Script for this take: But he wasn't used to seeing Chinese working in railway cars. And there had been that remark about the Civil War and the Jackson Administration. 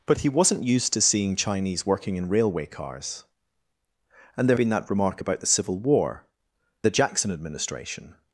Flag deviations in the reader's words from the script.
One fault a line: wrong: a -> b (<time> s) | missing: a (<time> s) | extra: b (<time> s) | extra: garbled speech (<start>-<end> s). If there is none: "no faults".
missing: had (4.6 s)
missing: and (6.3 s)